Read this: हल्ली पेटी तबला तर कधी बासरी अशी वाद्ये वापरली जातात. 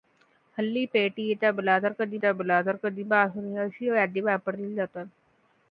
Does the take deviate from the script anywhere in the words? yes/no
yes